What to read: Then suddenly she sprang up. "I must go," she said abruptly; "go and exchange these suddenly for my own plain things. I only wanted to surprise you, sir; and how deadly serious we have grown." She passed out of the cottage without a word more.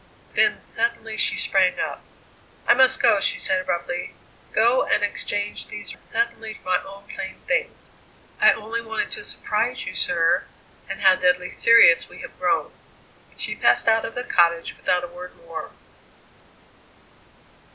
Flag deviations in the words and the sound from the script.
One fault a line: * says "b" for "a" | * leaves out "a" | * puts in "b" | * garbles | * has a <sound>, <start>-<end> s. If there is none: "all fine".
all fine